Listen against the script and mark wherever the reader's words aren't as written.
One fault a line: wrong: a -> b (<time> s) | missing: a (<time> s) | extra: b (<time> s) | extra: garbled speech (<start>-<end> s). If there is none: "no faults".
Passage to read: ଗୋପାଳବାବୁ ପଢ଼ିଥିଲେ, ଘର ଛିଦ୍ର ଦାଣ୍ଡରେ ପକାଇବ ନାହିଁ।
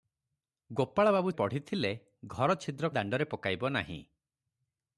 no faults